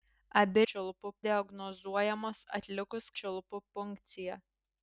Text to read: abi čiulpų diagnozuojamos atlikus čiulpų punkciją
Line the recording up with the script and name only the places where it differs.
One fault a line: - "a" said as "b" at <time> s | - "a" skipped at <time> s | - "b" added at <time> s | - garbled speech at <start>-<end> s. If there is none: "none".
none